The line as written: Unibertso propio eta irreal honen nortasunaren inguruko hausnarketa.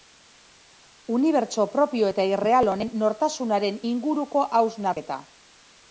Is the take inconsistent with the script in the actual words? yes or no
no